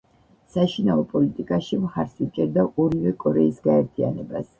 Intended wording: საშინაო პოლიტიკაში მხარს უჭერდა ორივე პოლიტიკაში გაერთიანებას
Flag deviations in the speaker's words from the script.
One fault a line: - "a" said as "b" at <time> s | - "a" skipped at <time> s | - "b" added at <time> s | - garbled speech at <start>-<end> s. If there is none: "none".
- "პოლიტიკაში" said as "კორეის" at 3.2 s